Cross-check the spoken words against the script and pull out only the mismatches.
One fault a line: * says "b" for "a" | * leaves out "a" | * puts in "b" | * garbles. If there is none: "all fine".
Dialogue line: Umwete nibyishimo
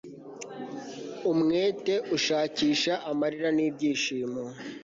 * puts in "ushakisha amarira"